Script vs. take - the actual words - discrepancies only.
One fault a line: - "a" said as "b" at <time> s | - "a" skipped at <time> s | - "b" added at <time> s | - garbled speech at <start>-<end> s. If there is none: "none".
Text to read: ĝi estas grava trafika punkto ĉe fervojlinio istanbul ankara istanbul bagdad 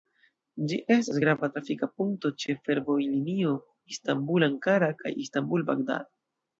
- "kaj" added at 5.0 s